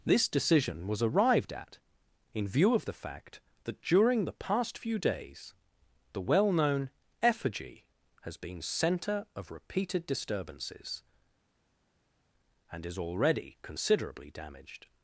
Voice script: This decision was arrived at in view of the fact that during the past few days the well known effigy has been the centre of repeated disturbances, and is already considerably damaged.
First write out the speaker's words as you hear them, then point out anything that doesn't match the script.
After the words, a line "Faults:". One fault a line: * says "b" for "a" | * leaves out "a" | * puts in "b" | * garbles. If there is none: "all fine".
This decision was arrived at in view of the fact that during the past few days the well known effigy has been centre of repeated disturbances, and is already considerably damaged.
Faults:
* leaves out "the"